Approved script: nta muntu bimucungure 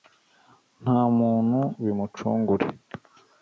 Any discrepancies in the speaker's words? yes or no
no